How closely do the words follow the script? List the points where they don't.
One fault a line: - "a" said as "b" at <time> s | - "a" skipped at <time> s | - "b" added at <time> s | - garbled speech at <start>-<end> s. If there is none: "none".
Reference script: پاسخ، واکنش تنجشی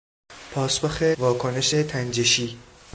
none